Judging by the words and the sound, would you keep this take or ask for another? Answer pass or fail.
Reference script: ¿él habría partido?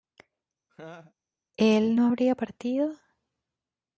fail